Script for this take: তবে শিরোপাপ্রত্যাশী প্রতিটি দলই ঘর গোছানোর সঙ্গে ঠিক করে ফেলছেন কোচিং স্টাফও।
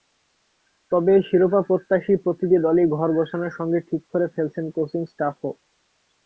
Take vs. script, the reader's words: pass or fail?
pass